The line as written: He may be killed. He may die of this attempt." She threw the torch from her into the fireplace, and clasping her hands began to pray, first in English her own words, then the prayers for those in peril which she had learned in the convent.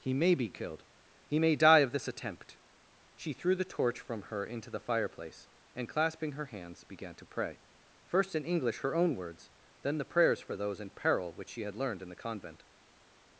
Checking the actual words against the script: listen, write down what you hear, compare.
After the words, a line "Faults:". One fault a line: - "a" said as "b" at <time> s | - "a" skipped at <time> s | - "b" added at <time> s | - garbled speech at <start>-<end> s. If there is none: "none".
He may be killed. He may die of this attempt." She threw the torch from her into the fireplace, and clasping her hands began to pray, first in English her own words, then the prayers for those in peril which she had learned in the convent.
Faults:
none